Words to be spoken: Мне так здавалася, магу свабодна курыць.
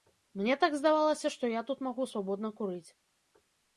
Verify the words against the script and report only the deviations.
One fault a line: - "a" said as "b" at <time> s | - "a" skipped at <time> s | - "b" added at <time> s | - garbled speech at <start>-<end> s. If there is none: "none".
- "што я тут" added at 1.4 s